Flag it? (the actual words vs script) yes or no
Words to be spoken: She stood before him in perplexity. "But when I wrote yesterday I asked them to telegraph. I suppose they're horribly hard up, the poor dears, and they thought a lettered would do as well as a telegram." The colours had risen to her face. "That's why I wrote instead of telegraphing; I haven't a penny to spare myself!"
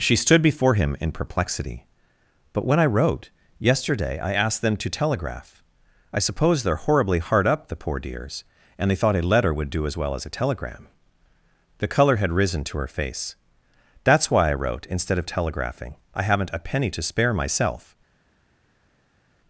yes